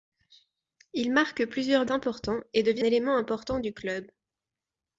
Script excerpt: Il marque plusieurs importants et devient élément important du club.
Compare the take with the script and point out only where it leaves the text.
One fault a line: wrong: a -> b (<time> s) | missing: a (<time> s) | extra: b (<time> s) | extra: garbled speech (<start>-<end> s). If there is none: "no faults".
no faults